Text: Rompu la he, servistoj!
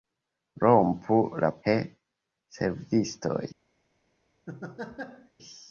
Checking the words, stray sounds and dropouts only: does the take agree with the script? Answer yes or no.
no